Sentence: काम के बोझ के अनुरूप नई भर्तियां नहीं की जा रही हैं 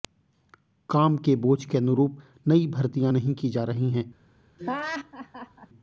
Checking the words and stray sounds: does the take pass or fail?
fail